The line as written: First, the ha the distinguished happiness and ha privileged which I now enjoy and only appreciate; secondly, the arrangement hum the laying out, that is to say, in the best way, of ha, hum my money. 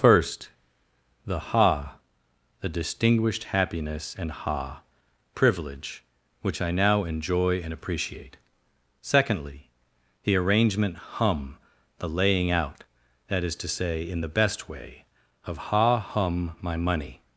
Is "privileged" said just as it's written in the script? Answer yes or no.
no